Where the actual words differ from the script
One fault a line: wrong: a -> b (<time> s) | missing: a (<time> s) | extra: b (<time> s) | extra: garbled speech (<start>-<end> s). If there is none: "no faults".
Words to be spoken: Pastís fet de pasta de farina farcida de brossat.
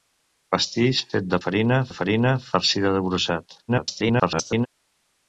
wrong: pasta -> farina (1.4 s)
extra: garbled speech (3.7-4.7 s)